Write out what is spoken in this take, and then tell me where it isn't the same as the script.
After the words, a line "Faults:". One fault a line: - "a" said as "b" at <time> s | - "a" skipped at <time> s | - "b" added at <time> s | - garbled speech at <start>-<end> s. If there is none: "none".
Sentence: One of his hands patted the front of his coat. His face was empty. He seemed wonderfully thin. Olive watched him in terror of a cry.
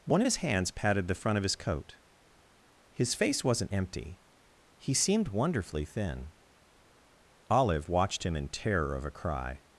One of his hands patted the front of his coat. His face wasn't empty. He seemed wonderfully thin. Olive watched him in terror of a cry.
Faults:
- "was" said as "wasn't" at 3.4 s